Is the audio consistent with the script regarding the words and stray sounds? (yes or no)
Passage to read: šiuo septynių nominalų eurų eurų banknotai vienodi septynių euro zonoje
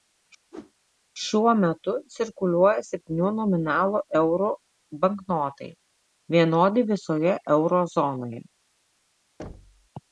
no